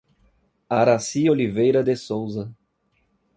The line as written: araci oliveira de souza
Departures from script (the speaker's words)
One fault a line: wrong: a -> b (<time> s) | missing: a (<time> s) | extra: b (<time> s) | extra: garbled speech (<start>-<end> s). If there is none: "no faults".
no faults